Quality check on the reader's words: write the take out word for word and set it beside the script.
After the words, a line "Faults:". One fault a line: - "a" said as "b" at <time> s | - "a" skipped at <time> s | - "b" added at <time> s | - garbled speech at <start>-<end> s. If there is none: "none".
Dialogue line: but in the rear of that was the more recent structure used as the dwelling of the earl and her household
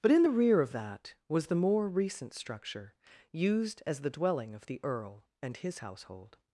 but in the rear of that was the more recent structure used as the dwelling of the earl and his household
Faults:
- "her" said as "his" at 5.6 s